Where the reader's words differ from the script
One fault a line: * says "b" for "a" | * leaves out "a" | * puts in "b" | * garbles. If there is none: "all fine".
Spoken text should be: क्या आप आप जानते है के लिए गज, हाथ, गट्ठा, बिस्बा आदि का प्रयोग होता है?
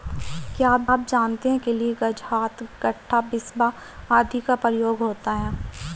all fine